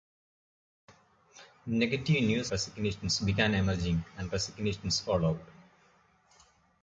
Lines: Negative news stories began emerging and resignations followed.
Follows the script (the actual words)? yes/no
no